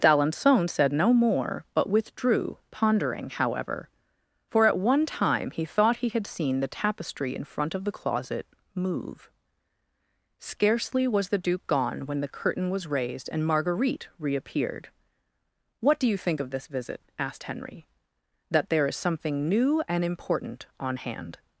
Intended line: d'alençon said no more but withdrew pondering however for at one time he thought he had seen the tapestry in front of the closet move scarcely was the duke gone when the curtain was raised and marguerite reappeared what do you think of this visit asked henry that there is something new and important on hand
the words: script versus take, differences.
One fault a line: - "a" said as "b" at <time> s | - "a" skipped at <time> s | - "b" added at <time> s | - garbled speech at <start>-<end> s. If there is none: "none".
none